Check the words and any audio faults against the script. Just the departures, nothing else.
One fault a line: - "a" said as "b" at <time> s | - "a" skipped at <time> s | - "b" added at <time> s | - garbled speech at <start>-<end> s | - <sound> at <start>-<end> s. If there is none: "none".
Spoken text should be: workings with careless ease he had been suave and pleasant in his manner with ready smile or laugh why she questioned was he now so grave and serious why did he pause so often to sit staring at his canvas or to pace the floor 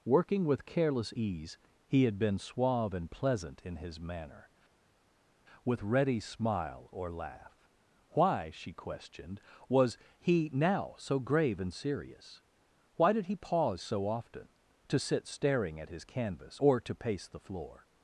- "workings" said as "working" at 0.1 s